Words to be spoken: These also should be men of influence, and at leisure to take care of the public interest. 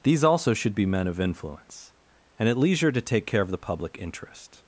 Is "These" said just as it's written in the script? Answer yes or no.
yes